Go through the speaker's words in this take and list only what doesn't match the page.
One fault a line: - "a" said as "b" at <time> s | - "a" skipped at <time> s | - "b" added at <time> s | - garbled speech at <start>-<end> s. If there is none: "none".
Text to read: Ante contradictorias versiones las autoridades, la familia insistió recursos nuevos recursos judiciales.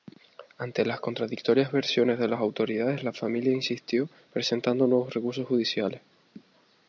- "las" added at 0.8 s
- "de" added at 2.2 s
- "recursos" said as "presentando" at 4.3 s